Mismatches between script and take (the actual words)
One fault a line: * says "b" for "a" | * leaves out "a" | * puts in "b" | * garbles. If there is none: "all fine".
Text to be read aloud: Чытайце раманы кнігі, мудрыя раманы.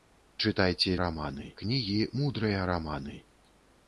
all fine